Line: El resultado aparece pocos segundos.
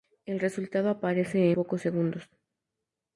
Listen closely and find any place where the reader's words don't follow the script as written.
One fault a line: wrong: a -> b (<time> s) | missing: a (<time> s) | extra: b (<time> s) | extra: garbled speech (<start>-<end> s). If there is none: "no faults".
no faults